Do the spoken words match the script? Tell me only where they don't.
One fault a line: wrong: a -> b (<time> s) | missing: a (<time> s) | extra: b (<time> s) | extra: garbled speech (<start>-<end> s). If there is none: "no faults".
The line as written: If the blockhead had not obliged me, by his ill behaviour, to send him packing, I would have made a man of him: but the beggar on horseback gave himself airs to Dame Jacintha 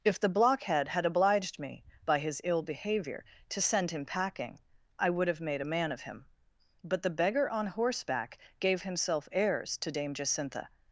missing: not (1.1 s)